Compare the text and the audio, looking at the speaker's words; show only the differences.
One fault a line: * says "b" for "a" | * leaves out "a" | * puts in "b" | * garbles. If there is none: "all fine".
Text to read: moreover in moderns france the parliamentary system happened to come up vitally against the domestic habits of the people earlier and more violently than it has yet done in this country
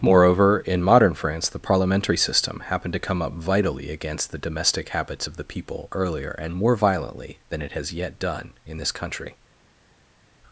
* says "modern" for "moderns"